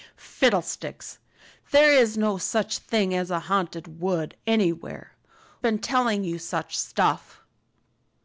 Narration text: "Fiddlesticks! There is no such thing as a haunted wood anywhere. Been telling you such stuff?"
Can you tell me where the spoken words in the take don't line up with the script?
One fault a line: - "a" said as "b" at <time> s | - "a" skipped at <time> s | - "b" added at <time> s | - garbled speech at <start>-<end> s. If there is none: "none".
none